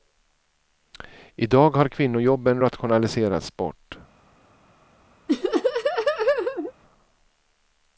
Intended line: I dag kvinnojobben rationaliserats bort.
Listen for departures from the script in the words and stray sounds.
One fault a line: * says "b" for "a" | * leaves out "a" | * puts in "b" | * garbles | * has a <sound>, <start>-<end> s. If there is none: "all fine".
* puts in "har"
* has a laugh, 5.3-6.7 s